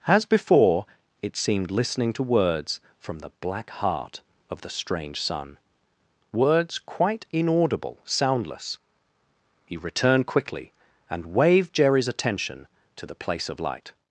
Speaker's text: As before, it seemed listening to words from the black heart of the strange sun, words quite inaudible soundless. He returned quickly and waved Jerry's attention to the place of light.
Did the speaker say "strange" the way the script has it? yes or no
yes